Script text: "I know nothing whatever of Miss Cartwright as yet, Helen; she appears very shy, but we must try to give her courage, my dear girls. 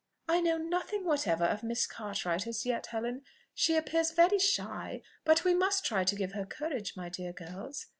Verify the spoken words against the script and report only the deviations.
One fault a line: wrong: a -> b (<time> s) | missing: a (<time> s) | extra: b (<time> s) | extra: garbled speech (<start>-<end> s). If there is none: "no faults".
no faults